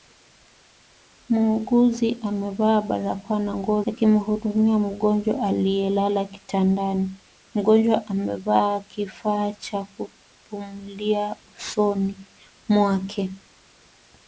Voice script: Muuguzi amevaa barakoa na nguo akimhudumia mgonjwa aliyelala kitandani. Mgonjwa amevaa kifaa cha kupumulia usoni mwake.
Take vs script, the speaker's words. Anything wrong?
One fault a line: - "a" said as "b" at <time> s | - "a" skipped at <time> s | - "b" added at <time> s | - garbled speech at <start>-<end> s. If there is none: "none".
none